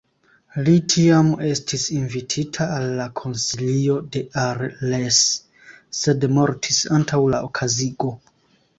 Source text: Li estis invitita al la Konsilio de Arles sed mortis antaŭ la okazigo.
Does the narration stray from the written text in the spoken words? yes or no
yes